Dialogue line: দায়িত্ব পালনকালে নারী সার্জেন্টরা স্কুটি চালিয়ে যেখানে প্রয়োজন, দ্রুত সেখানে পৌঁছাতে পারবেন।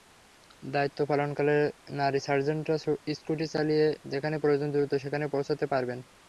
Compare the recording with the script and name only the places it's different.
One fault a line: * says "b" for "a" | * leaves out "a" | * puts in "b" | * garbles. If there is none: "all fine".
all fine